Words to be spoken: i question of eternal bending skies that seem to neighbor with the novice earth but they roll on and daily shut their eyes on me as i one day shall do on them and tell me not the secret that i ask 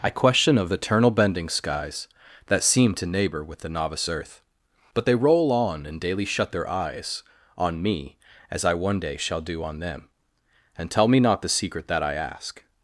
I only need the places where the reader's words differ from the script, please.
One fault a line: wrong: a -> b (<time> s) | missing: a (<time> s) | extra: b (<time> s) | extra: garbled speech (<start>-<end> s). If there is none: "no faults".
no faults